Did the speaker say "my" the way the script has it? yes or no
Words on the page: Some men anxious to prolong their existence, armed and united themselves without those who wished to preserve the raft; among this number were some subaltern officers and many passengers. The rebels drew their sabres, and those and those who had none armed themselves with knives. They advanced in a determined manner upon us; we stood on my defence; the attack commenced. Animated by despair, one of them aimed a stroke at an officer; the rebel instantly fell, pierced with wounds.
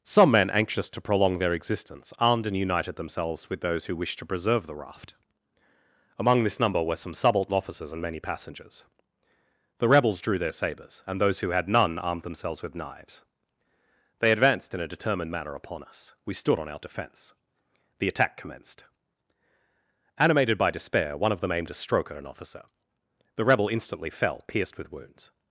no